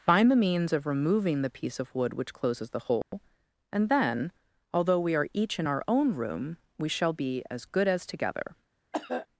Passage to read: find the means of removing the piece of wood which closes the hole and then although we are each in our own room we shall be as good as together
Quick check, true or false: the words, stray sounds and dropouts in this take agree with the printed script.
false